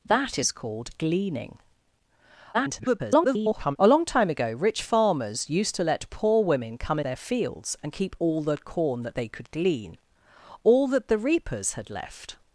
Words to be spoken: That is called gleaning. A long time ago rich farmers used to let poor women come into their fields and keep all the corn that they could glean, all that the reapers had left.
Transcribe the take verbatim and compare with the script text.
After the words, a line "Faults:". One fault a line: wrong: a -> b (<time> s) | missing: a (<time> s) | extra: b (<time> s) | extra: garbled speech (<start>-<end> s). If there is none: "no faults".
That is called gleaning. [garbled] A long time ago rich farmers used to let poor women come their fields and keep all the corn that they could glean, all that the reapers had left.
Faults:
extra: garbled speech (2.5-3.8 s)
missing: into (7.0 s)